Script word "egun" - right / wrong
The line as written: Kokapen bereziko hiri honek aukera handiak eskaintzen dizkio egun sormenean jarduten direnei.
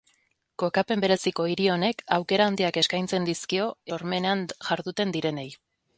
wrong